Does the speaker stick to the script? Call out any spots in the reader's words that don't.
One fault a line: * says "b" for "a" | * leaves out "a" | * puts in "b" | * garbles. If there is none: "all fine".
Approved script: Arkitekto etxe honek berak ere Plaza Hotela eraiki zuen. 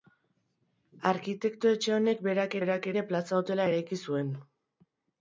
* puts in "berak"